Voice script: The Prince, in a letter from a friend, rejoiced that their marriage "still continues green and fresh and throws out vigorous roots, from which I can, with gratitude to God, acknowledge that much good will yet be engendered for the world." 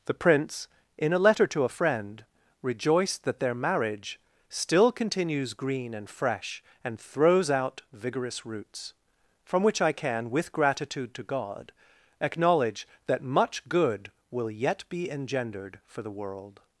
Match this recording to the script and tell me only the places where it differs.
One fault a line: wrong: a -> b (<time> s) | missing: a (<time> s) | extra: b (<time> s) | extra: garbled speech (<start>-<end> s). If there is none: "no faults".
wrong: from -> to (1.5 s)